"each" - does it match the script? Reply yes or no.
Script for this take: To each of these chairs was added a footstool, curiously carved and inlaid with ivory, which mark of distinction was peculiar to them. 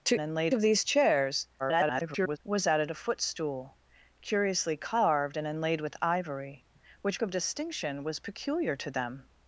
no